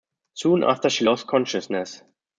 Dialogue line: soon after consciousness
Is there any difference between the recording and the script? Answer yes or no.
yes